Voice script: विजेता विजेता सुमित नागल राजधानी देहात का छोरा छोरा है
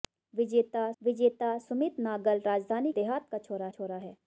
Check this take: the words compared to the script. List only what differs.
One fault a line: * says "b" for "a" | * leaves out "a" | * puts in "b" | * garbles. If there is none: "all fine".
all fine